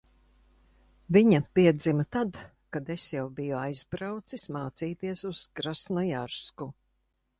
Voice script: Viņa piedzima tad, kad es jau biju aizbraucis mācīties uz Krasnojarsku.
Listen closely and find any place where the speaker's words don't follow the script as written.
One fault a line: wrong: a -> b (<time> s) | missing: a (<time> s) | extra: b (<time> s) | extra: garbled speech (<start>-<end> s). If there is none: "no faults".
no faults